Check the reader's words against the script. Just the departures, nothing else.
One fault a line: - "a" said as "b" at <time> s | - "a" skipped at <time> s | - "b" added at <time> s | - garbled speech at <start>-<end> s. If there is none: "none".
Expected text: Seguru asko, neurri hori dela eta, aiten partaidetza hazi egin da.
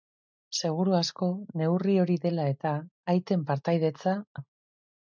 - "hazi egin" skipped at 4.2 s